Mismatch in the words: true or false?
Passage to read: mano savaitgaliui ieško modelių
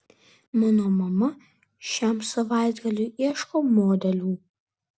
true